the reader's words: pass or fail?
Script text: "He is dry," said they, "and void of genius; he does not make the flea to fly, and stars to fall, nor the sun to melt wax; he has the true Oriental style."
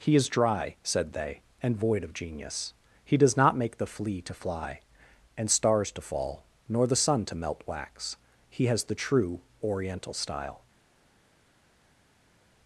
pass